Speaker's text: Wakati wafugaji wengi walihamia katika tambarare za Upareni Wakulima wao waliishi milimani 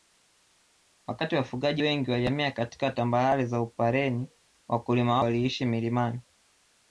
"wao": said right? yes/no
no